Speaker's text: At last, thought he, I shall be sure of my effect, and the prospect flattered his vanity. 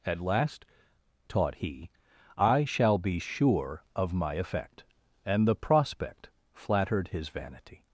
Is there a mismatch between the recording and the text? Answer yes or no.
yes